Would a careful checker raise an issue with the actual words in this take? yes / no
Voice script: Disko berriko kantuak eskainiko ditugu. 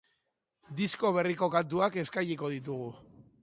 no